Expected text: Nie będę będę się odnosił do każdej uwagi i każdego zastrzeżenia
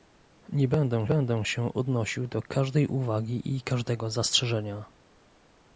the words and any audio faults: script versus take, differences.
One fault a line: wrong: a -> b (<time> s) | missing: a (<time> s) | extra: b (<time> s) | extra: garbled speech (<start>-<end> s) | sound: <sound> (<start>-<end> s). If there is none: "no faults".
no faults